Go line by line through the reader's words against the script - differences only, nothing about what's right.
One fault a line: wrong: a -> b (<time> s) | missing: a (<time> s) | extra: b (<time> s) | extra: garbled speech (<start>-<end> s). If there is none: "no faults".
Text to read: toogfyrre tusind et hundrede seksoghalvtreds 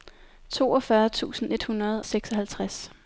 no faults